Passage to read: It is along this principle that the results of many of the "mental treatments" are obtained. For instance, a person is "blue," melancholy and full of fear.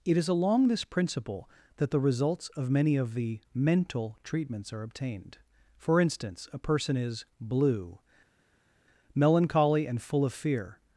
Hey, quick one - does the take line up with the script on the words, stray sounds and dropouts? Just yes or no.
yes